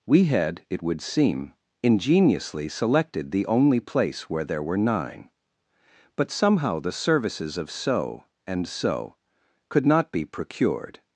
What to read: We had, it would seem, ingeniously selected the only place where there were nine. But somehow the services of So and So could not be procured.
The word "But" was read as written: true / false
true